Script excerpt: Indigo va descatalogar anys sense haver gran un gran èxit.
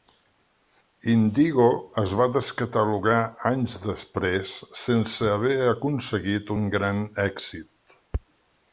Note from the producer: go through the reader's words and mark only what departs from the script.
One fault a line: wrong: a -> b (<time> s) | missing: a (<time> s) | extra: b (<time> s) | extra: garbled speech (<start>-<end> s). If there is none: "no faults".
extra: es (2.0 s)
extra: després (3.9 s)
wrong: gran -> aconseguit (5.8 s)